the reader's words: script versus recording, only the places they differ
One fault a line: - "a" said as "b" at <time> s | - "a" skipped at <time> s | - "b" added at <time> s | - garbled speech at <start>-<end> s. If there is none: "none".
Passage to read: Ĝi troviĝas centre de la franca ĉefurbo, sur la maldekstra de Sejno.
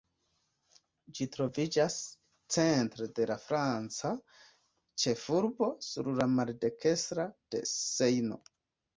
none